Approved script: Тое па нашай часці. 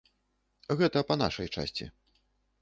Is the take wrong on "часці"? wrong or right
right